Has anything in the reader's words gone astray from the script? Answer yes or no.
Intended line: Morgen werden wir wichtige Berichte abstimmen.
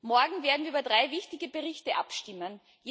yes